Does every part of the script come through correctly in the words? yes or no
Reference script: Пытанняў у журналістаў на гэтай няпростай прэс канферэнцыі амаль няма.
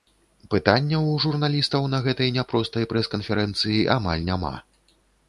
yes